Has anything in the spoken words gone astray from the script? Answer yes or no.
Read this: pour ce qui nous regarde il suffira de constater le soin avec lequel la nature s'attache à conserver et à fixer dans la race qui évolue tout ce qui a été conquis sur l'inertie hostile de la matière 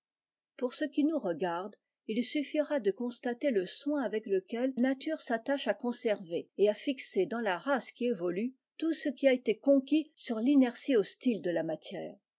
yes